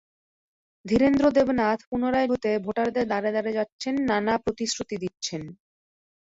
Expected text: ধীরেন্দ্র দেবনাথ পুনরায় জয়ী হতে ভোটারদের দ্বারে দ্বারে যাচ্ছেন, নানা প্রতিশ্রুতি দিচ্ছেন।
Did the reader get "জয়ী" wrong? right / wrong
wrong